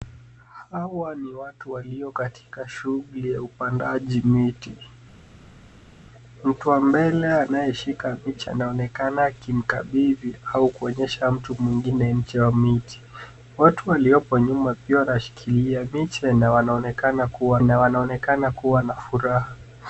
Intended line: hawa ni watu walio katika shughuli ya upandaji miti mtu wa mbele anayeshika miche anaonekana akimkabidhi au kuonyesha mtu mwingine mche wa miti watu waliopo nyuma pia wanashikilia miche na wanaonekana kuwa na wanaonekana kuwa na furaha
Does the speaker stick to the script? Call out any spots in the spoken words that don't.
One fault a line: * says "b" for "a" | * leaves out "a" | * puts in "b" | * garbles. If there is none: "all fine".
all fine